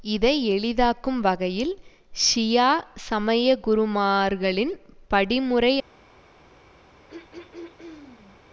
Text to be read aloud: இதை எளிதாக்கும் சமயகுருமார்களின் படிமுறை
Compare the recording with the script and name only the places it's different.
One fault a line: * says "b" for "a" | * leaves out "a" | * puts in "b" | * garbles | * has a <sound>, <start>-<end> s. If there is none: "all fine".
* puts in "வகையில் ஷியா"
* has a throat clearing, 7.1-8.4 s